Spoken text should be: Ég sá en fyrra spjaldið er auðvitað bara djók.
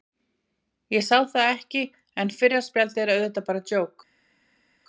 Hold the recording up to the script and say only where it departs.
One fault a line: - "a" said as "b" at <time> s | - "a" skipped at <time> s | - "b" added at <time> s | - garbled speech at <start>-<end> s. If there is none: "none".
- "það ekki" added at 1.3 s